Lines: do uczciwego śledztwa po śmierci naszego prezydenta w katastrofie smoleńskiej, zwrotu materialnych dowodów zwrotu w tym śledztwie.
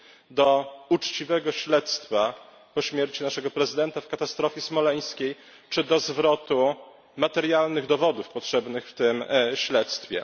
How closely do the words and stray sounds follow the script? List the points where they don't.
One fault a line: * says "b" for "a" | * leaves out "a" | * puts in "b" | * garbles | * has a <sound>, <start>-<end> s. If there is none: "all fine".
* puts in "czy do"
* says "potrzebnych" for "zwrotu"